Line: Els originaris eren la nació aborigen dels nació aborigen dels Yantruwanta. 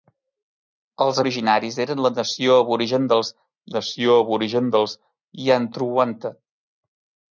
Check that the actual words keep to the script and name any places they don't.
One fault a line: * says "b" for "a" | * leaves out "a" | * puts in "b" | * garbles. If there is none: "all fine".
all fine